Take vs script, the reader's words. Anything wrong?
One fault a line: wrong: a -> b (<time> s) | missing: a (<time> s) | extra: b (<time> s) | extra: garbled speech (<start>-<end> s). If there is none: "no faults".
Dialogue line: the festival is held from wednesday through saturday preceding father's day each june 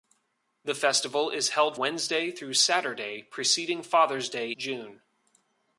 missing: from (1.8 s)
missing: each (4.5 s)